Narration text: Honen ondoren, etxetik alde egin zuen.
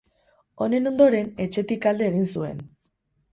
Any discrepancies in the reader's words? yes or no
no